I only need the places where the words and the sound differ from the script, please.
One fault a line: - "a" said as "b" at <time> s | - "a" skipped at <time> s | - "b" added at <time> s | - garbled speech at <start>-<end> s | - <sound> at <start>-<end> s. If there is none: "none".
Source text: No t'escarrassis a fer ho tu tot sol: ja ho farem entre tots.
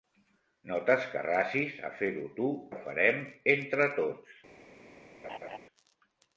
- "tot sol ja" skipped at 2.5 s
- laugh at 5.2-5.6 s